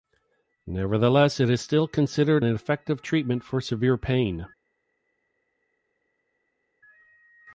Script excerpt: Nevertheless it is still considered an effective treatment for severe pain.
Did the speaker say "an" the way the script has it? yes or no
no